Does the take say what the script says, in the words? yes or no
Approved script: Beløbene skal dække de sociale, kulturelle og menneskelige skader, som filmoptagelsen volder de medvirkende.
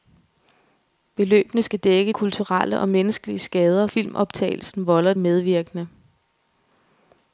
no